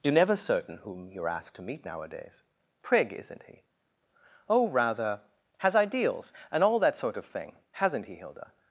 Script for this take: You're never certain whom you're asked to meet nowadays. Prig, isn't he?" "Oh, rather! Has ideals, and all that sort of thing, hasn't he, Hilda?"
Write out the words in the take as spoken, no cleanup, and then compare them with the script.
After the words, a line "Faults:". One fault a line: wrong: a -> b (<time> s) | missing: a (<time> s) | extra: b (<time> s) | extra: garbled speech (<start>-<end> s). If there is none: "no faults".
You're never certain whom you're asked to meet nowadays. Prig, isn't he?" "Oh, rather! Has ideals, and all that sort of thing, hasn't he, Hilda?"
Faults:
no faults